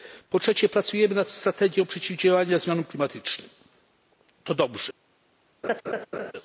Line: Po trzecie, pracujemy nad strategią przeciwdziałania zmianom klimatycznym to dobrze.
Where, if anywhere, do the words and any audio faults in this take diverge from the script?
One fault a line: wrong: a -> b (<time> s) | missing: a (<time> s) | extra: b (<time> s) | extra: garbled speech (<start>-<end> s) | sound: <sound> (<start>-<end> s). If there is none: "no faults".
sound: laugh (5.6-6.3 s)